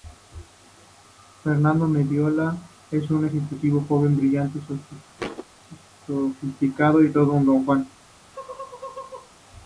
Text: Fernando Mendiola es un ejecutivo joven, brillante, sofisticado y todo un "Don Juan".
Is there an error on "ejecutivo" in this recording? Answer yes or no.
no